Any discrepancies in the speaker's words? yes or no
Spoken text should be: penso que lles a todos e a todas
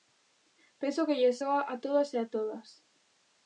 yes